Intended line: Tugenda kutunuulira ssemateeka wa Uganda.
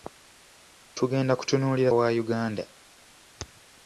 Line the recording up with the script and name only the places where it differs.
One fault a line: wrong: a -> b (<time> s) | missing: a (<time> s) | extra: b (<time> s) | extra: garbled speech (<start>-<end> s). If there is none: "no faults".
missing: ssemateeka (1.9 s)